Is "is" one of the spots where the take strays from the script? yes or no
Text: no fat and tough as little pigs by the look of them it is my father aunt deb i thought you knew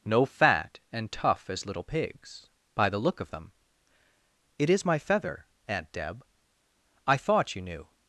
no